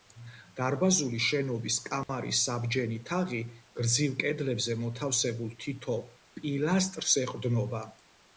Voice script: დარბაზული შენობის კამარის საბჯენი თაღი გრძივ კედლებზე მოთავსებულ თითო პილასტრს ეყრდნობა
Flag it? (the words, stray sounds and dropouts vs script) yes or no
yes